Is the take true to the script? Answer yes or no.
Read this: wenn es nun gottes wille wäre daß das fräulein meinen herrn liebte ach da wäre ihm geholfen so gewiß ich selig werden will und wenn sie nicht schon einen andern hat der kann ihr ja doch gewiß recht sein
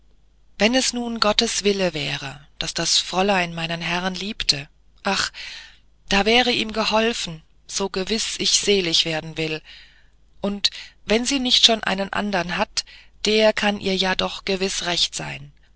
yes